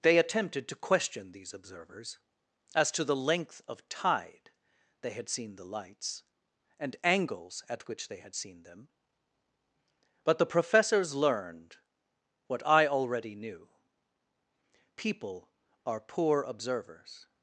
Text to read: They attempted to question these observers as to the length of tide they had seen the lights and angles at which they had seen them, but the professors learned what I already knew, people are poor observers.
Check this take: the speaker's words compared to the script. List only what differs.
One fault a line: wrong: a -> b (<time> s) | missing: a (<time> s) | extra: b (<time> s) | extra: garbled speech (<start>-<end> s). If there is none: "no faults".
no faults